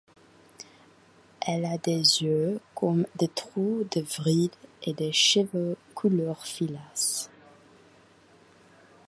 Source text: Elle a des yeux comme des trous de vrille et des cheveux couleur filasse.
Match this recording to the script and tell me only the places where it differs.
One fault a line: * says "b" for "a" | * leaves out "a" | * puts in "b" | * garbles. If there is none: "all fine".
all fine